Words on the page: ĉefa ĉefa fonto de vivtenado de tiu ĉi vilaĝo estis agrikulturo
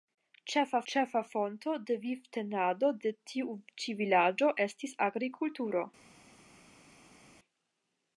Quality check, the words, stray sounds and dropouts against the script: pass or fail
pass